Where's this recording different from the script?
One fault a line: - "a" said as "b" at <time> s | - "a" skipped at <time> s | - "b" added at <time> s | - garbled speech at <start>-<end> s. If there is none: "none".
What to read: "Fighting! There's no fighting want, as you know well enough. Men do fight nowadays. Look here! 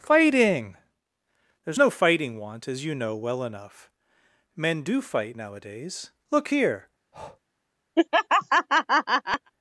none